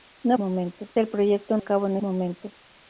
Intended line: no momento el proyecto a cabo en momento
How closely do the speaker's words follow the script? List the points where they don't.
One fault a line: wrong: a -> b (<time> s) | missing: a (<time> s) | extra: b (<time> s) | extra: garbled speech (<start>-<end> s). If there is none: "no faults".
no faults